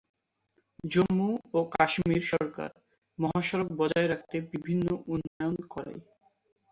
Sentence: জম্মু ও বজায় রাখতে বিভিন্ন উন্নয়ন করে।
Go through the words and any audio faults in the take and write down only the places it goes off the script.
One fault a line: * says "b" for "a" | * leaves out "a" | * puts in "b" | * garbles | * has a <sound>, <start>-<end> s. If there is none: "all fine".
* puts in "কাশ্মীর সরকার মহাসড়ক"
* has a dropout, 5.3-5.4 s